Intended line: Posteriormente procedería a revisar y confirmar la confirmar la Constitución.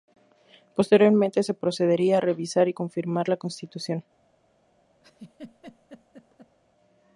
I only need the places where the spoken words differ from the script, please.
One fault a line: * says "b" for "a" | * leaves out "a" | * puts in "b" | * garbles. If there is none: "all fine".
* puts in "se"
* leaves out "confirmar la"